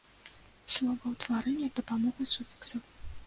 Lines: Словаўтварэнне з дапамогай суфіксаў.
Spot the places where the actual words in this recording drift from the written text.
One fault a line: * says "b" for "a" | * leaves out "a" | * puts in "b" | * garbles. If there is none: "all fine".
all fine